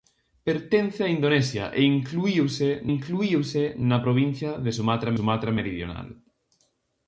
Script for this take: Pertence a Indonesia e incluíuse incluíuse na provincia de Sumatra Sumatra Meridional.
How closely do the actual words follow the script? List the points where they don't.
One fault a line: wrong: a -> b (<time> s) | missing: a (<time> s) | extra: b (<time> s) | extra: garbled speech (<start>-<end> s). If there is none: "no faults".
no faults